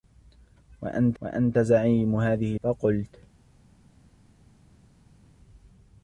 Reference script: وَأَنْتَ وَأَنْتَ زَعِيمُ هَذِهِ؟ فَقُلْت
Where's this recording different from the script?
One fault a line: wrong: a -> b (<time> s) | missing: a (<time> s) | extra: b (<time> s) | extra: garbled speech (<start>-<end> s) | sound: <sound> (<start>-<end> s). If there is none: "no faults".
no faults